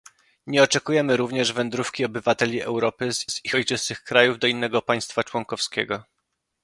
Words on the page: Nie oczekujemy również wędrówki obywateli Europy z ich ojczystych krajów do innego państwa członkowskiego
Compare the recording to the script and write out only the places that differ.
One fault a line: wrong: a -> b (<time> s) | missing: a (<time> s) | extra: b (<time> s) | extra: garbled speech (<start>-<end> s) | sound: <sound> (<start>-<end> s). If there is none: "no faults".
extra: z (3.3 s)